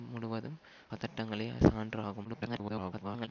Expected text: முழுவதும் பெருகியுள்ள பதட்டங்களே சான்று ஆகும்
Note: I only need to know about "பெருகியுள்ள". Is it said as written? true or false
false